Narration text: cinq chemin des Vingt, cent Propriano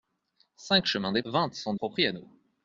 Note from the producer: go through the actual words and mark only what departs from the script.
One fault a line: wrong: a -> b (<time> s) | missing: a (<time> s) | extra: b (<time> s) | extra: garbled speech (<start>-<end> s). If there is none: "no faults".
no faults